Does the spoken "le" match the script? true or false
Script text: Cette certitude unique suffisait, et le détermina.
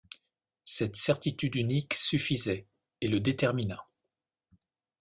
true